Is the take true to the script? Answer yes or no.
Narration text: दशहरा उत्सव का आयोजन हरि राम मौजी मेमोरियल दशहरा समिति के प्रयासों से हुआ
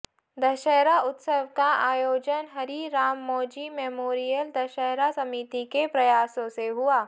yes